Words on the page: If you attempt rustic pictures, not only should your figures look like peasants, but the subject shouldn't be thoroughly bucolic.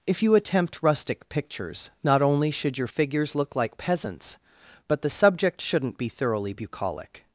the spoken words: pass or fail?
pass